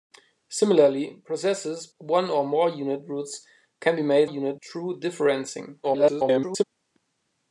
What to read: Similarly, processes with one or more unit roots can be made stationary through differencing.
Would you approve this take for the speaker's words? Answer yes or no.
no